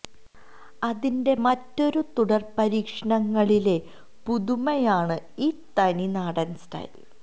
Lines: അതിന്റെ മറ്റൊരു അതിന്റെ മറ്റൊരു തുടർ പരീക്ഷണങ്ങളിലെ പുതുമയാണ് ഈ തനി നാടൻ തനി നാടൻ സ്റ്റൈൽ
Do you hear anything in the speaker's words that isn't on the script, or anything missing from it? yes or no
yes